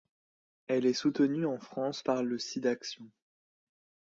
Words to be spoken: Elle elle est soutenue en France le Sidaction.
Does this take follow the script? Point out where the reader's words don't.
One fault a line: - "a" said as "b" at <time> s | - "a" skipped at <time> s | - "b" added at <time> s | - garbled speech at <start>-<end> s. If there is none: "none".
- "elle" skipped at 0.9 s
- "par" added at 2.0 s